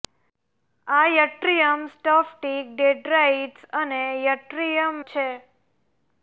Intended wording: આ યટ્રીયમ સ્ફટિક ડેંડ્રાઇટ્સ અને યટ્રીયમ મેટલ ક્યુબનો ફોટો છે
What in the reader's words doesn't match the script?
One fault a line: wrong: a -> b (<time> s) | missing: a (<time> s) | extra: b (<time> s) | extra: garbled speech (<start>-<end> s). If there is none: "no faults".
missing: મેટલ ક્યુબનો ફોટો (5.0 s)